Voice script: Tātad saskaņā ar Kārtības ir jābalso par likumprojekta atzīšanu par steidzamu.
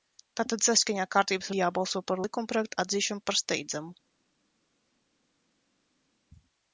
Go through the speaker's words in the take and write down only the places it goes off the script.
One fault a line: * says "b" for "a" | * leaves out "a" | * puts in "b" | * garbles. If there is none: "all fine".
all fine